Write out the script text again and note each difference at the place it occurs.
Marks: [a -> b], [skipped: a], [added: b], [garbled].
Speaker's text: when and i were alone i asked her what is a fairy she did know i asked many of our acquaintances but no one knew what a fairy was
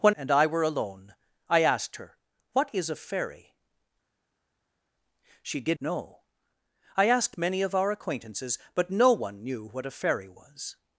when and i were alone i asked her what is a fairy she did know i asked many of our acquaintances but no one knew what a fairy was